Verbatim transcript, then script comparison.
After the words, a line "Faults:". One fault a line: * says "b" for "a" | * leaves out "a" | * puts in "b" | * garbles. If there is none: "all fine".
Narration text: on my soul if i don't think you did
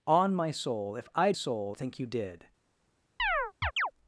on my soul if i soul think you did
Faults:
* says "soul" for "don't"